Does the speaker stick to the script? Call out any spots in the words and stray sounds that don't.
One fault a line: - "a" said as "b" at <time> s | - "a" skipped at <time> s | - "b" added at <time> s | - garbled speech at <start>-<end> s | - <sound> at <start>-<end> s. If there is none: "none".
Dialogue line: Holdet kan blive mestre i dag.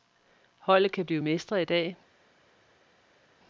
none